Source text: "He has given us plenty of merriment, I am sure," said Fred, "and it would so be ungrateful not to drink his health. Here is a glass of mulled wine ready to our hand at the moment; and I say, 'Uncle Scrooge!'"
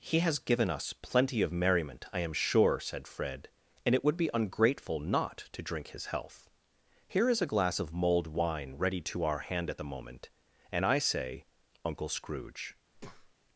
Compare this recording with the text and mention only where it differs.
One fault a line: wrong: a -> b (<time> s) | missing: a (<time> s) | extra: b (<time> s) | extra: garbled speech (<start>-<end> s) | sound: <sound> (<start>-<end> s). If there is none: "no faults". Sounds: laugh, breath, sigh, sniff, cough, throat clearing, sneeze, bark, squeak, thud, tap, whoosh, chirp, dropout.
missing: so (4.2 s)
sound: breath (12.9-13.3 s)